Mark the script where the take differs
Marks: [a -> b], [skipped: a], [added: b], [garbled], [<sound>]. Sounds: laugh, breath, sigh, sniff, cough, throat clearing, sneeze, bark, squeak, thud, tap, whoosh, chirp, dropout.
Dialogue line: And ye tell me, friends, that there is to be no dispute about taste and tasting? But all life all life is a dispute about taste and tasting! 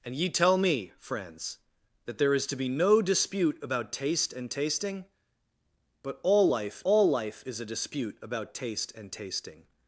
And ye tell me, friends, that there is to be no dispute about taste and tasting? But all life all life is a dispute about taste and tasting!